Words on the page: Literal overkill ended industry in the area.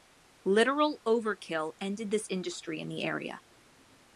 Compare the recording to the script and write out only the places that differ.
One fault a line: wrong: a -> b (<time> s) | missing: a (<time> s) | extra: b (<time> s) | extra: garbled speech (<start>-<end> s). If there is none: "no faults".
extra: this (2.1 s)